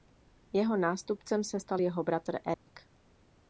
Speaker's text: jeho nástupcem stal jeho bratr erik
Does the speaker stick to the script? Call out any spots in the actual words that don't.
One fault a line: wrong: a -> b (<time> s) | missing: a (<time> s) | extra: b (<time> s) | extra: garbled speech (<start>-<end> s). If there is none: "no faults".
extra: se (1.4 s)